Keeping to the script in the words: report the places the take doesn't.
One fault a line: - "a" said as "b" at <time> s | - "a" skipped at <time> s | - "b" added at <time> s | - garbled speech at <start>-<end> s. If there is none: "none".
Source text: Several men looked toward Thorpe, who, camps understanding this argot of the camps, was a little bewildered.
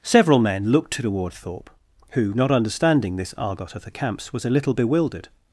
- "camps" said as "not" at 2.3 s